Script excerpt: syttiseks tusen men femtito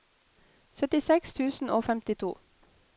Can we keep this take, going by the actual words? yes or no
no